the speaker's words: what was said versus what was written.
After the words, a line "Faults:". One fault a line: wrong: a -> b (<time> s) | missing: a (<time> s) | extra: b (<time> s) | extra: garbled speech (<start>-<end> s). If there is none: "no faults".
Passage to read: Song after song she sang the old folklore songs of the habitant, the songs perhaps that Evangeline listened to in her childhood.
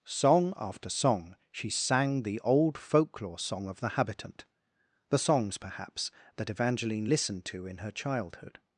Song after song she sang the old folklore song of the habitant, the songs perhaps that Evangeline listened to in her childhood.
Faults:
wrong: songs -> song (3.4 s)